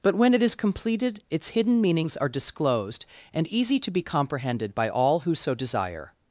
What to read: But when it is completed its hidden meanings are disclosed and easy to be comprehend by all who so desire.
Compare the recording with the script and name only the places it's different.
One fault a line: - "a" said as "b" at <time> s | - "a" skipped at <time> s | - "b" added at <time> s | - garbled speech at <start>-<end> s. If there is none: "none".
- "comprehend" said as "comprehended" at 4.0 s